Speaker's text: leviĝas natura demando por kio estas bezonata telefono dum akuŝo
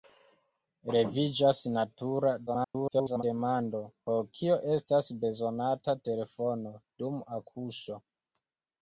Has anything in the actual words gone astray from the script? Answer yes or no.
yes